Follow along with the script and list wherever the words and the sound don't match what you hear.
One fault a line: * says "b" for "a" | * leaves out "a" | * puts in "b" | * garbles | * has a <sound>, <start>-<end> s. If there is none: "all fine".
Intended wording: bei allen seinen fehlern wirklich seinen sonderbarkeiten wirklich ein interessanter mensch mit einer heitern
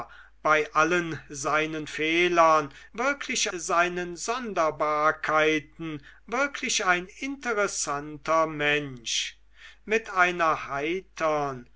all fine